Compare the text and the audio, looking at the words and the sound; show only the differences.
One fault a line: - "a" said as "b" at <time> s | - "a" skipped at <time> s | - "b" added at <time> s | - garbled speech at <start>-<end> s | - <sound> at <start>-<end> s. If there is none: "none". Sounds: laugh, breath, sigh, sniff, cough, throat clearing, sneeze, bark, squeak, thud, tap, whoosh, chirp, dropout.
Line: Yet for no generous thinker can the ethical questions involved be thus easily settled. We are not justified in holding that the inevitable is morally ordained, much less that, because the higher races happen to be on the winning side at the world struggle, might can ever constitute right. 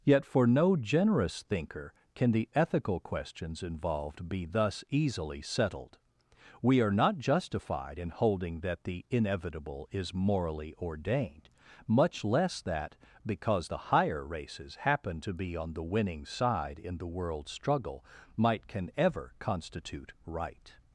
- "at" said as "in" at 16.8 s